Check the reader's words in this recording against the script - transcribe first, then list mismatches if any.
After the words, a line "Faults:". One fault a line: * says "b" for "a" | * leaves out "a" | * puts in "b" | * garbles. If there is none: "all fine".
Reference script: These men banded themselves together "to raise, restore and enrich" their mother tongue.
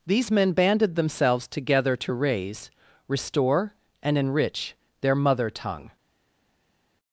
These men banded themselves together "to raise, restore and enrich" their mother tongue.
Faults:
all fine